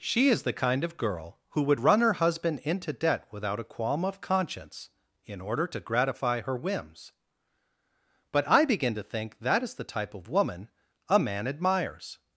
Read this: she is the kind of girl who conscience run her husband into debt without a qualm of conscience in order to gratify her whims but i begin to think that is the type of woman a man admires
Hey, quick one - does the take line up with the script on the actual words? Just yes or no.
no